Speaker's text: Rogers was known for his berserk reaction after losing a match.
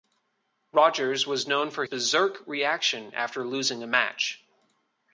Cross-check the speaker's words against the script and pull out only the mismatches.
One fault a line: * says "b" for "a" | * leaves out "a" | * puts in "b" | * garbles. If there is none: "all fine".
* leaves out "his"